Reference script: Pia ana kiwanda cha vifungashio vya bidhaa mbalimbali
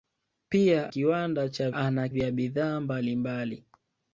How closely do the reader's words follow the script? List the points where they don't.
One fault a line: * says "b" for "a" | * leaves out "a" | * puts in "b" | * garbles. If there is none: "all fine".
* leaves out "ana"
* says "ana" for "vifungashio"